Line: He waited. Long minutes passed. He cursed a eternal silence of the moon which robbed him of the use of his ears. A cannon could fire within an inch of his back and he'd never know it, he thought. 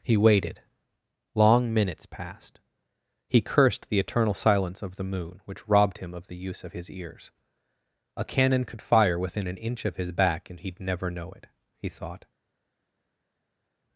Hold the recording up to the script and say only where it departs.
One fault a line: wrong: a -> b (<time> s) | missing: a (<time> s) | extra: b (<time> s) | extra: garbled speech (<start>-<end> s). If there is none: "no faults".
wrong: a -> the (3.9 s)